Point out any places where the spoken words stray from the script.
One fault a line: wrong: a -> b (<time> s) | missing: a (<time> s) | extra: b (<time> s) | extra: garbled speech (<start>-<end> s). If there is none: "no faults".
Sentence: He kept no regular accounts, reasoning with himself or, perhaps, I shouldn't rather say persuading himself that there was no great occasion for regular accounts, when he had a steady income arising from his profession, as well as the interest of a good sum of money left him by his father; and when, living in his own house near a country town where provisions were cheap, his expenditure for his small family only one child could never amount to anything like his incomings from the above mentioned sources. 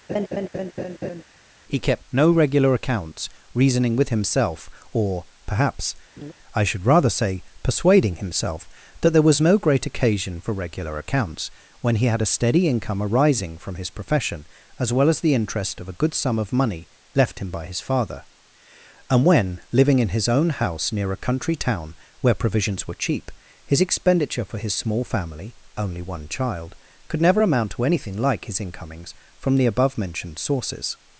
wrong: shouldn't -> should (6.6 s)